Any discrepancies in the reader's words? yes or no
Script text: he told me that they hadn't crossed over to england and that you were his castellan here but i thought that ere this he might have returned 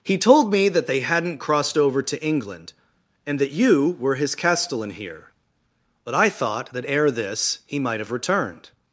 no